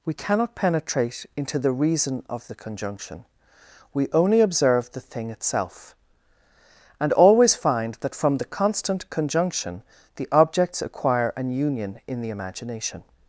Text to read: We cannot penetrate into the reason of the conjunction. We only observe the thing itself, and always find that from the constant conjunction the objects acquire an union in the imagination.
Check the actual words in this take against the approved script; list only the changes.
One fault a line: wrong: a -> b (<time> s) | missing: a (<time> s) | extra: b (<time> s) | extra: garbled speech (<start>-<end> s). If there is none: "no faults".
no faults